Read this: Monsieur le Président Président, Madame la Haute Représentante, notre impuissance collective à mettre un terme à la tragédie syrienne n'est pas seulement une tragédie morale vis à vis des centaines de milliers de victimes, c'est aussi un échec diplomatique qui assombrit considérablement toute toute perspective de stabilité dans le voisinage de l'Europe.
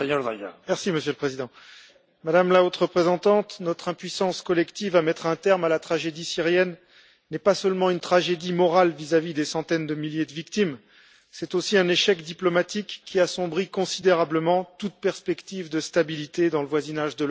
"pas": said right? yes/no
yes